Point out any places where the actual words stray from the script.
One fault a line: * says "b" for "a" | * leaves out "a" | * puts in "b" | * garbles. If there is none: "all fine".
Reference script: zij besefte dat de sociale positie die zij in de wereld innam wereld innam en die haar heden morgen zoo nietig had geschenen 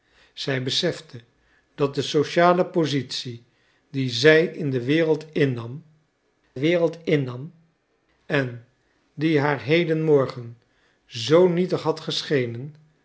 all fine